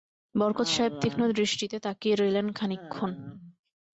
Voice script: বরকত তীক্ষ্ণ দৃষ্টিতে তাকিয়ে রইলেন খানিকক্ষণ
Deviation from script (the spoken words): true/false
true